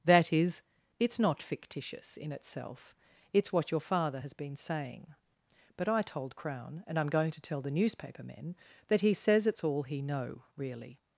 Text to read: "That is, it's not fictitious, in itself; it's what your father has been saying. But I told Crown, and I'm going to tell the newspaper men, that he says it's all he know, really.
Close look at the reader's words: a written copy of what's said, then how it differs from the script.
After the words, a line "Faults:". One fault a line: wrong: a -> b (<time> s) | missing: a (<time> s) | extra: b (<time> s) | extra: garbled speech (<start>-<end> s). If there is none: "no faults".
"That is, it's not fictitious, in itself; it's what your father has been saying. But I told Crown, and I'm going to tell the newspaper men, that he says it's all he know, really.
Faults:
no faults